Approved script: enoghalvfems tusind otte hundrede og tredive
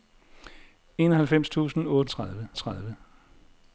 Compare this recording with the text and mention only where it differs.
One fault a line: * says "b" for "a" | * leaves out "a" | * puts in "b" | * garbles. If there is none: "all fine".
* says "tredive" for "hundrede"